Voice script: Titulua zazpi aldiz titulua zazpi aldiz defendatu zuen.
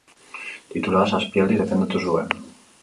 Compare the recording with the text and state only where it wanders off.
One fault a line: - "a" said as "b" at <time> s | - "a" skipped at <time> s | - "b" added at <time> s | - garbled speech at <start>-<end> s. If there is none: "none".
- "titulua zazpi aldiz" skipped at 1.6 s